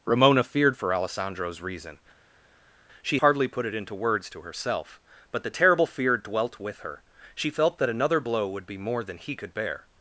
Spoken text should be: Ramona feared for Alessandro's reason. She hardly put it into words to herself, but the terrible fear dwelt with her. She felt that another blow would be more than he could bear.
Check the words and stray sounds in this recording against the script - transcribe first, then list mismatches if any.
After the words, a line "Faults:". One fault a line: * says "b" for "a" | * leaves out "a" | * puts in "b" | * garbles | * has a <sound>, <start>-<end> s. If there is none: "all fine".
Ramona feared for Alessandro's reason. She hardly put it into words to herself, but the terrible fear dwelt with her. She felt that another blow would be more than he could bear.
Faults:
all fine